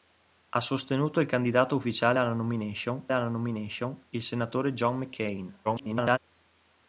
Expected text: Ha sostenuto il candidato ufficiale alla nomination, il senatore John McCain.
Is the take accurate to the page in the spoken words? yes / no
no